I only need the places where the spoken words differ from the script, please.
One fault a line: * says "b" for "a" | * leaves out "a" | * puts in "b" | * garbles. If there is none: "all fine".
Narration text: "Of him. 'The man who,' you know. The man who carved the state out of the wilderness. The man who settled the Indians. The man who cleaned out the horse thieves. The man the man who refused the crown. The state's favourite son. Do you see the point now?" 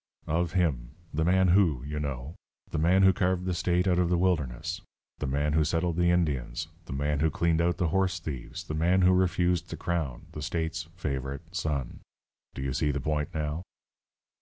* leaves out "the man"